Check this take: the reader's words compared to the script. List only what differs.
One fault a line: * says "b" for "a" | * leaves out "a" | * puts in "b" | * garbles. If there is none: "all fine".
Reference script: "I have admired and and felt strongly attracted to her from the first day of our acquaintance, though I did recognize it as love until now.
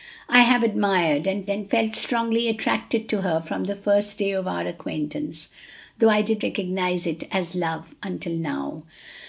all fine